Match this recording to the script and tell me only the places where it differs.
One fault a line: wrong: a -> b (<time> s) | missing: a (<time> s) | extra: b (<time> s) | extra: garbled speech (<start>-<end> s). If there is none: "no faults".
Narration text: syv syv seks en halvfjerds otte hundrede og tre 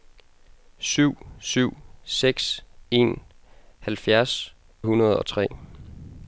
missing: otte (4.5 s)